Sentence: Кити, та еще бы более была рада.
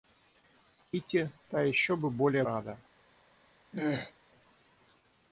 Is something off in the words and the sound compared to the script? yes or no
yes